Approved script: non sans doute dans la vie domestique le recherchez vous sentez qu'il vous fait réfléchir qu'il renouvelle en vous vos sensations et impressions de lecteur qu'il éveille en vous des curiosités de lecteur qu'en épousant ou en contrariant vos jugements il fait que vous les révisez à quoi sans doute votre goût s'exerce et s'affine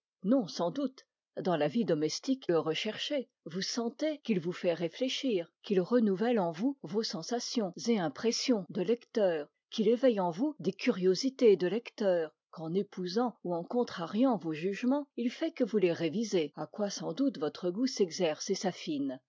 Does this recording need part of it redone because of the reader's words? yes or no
no